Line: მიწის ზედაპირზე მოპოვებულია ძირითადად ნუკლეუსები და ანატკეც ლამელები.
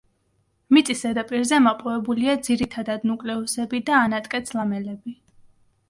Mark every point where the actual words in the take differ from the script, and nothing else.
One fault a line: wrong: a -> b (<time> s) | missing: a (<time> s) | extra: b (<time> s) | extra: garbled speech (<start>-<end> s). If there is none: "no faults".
no faults